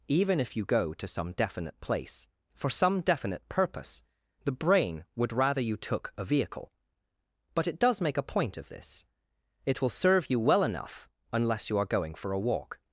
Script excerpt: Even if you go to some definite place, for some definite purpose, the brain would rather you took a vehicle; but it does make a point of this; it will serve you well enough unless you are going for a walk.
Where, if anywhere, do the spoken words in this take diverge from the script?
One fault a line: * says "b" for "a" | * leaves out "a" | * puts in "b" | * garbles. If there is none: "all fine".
all fine